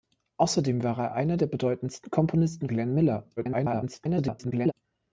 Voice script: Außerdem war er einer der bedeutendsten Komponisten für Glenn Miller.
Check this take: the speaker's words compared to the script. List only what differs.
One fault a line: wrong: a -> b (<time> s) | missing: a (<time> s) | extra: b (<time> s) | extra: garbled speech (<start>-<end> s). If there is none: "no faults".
missing: für (2.7 s)
extra: garbled speech (3.4-4.7 s)